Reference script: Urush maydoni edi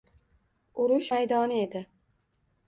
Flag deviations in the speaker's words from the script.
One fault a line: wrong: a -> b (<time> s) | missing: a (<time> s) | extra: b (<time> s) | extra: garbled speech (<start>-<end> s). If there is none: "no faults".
no faults